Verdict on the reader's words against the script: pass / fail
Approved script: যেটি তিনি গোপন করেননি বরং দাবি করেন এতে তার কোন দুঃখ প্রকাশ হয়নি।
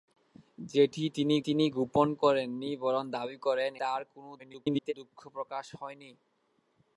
fail